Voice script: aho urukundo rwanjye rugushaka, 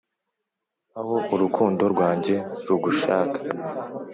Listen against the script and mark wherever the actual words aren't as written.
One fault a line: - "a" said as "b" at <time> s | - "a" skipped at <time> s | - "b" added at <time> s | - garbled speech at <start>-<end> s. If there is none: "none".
none